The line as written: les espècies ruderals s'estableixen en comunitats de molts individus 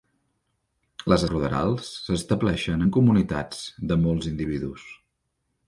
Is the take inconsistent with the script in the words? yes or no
yes